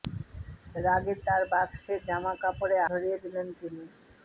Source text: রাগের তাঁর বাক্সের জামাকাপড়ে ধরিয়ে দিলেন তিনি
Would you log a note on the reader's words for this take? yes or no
no